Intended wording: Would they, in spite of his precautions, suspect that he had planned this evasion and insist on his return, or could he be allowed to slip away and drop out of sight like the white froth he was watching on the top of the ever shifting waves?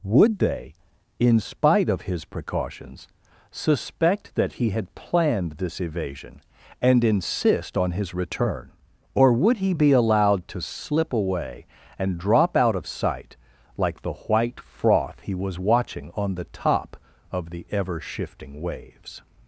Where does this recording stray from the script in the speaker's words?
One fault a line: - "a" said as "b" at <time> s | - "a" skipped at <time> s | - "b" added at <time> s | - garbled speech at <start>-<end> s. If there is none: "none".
- "could" said as "would" at 9.3 s